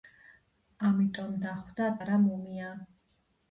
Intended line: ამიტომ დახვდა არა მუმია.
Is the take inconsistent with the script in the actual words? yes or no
no